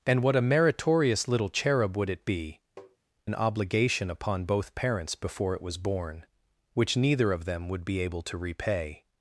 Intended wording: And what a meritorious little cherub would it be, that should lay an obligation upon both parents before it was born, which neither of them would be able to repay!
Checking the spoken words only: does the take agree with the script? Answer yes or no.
no